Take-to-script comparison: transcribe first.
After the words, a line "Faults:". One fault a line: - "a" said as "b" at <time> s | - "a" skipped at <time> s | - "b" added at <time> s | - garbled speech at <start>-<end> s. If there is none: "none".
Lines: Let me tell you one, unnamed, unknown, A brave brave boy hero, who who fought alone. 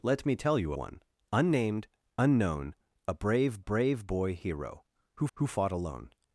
Let me tell you one, unnamed, unknown, A brave brave boy hero, who who fought alone.
Faults:
none